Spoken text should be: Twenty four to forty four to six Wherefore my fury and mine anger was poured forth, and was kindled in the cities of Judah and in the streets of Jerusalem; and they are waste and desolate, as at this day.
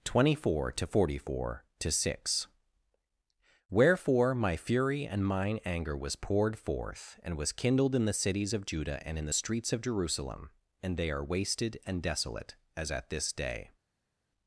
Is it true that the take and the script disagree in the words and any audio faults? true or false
true